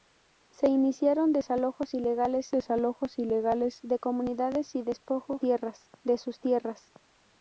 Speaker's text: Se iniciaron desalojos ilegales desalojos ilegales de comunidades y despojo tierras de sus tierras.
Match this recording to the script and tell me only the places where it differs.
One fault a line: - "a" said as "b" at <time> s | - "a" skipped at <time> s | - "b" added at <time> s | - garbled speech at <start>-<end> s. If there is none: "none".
none